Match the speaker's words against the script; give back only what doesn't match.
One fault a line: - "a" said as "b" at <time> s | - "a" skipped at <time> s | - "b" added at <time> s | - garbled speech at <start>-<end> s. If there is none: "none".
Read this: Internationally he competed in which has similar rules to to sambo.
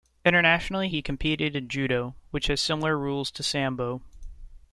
- "judo" added at 1.7 s
- "to" skipped at 3.4 s